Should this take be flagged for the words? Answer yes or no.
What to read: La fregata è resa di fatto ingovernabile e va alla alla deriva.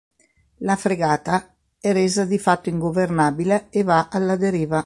yes